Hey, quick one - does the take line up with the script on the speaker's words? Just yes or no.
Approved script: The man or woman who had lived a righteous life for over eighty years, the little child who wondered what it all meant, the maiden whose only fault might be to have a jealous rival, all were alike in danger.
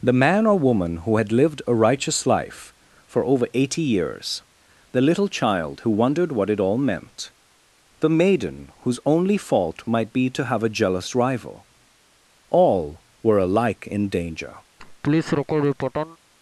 yes